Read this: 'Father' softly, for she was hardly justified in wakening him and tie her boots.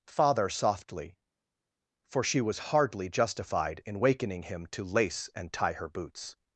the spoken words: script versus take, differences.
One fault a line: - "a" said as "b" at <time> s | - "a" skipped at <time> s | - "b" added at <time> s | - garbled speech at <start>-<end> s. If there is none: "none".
- "to lace" added at 4.7 s